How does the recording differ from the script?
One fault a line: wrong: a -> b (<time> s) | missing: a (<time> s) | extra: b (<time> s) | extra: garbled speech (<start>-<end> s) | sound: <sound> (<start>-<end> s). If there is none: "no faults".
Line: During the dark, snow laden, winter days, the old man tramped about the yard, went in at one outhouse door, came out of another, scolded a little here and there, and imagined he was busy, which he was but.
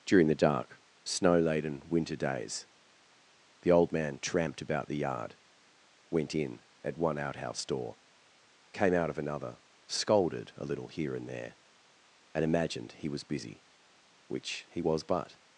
no faults